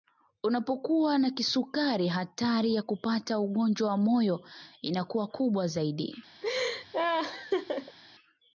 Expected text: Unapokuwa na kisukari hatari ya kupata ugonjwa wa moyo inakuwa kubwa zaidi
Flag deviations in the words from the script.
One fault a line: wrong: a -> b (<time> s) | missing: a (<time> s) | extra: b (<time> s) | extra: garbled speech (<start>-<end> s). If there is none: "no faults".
no faults